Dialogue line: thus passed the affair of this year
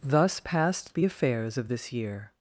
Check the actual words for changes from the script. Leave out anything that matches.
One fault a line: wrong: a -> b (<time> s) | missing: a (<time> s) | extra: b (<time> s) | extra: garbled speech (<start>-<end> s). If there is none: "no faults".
wrong: affair -> affairs (1.0 s)